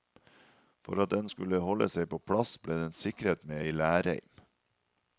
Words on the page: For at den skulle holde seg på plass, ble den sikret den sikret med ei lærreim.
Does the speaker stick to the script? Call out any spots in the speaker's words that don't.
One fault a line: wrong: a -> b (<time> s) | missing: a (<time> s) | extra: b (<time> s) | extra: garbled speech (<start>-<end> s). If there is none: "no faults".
missing: den sikret (3.5 s)